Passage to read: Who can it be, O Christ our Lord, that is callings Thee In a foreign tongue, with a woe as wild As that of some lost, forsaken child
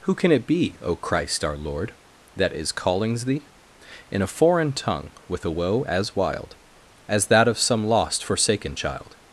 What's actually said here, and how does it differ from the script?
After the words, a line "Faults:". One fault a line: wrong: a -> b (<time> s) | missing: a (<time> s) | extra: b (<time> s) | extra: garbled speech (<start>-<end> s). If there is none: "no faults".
Who can it be, O Christ our Lord, that is callings Thee In a foreign tongue, with a woe as wild As that of some lost, forsaken child
Faults:
no faults